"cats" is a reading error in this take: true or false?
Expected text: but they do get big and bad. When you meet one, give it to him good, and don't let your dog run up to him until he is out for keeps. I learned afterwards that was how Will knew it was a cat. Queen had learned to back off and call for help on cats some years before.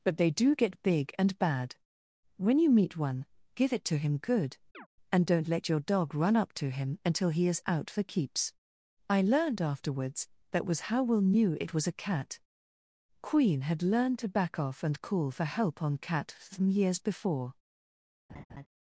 true